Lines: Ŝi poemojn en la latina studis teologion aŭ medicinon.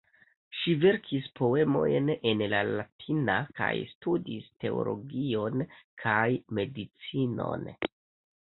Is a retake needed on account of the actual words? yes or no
yes